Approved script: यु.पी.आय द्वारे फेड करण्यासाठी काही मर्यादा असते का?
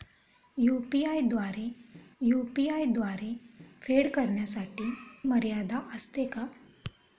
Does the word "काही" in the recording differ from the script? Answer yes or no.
yes